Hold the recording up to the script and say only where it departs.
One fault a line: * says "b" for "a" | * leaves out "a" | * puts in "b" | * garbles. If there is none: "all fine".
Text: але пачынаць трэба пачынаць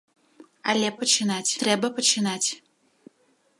all fine